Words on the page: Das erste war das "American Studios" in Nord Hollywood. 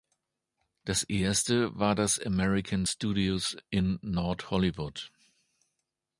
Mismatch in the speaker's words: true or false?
false